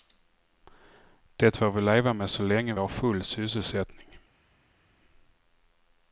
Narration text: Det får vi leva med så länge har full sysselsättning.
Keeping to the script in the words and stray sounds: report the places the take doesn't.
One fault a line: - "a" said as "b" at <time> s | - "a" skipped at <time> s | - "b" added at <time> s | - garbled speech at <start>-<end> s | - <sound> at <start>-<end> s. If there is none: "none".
none